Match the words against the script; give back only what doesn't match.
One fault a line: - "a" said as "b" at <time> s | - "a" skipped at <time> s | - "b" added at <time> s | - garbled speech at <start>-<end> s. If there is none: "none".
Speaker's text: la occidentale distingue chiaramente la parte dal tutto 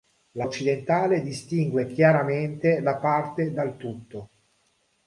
none